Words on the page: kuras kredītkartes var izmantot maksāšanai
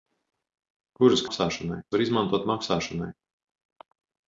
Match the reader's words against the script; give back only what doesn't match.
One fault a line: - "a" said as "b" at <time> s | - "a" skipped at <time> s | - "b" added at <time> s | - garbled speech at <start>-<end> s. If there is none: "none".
- "kredītkartes" said as "maksāšanai" at 1.2 s